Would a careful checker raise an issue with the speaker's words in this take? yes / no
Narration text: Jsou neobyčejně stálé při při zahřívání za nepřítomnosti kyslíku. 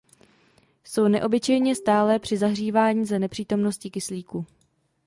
yes